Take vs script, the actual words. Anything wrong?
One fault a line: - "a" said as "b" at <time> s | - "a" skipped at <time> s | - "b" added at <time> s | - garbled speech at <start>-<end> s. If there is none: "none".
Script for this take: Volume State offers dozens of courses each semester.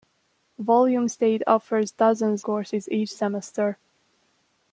- "of" skipped at 2.4 s